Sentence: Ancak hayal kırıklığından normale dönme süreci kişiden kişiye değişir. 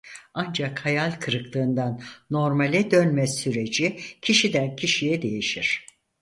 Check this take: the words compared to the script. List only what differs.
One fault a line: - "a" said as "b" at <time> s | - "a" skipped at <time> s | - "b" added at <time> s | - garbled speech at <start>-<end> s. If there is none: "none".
none